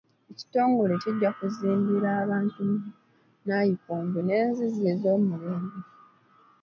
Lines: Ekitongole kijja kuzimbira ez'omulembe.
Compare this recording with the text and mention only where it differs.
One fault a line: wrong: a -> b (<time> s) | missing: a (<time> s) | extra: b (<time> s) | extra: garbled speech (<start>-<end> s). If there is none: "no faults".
extra: abantu nnayikondo n'enzizi (2.2 s)